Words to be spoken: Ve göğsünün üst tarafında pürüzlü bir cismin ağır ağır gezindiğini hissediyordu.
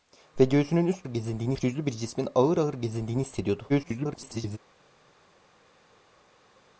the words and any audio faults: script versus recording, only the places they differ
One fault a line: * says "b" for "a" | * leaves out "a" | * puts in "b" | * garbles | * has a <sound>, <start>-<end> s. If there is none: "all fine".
* says "gezindiğini" for "tarafında"
* garbles